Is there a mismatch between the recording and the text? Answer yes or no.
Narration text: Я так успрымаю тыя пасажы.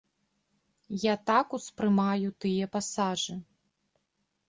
no